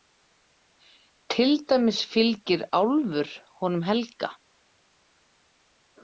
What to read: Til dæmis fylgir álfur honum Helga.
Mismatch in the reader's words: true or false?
false